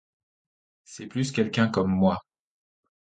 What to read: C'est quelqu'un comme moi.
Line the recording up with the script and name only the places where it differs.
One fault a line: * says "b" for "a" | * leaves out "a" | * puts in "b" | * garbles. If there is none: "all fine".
* puts in "plus"